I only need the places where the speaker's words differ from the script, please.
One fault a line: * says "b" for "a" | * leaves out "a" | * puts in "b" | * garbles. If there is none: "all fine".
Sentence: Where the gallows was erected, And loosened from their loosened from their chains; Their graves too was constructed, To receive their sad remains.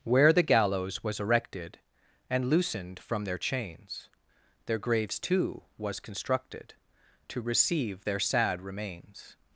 * leaves out "loosened from their"